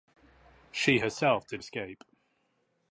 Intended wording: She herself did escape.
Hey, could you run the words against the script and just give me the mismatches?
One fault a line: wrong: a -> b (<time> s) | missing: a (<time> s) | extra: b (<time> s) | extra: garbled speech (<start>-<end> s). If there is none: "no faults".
no faults